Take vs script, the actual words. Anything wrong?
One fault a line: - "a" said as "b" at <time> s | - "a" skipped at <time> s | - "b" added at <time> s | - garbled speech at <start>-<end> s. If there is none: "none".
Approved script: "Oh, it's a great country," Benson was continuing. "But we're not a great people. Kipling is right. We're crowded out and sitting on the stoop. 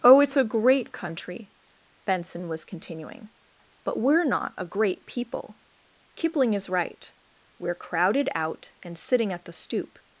- "on" said as "at" at 9.3 s